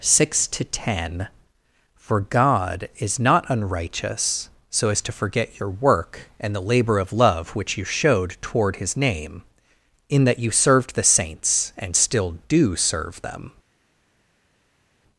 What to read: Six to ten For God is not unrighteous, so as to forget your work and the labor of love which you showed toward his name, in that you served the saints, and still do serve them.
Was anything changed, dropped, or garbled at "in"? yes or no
no